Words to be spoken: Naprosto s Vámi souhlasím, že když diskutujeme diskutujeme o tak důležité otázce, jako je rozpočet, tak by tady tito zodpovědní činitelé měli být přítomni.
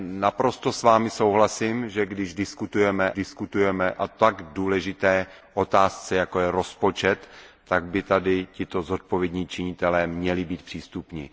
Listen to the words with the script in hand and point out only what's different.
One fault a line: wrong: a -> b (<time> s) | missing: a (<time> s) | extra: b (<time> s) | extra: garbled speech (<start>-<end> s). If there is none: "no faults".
no faults